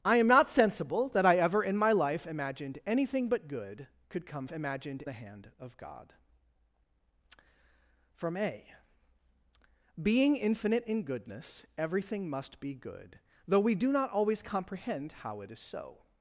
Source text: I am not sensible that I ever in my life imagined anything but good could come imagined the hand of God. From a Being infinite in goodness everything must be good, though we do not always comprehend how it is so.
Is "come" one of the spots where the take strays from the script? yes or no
no